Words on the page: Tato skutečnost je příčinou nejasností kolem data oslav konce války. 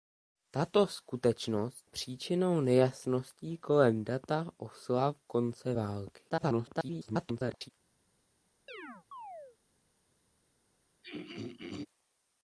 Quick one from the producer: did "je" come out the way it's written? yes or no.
no